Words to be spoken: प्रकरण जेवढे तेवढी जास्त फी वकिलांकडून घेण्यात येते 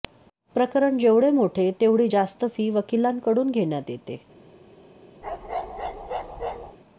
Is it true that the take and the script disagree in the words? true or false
true